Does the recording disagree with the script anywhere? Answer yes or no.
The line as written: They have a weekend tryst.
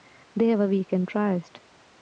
no